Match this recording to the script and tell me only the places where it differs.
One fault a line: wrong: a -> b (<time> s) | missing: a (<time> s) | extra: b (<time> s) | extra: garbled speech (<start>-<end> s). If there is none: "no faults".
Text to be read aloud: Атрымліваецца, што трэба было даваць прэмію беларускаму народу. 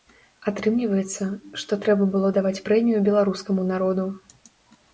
no faults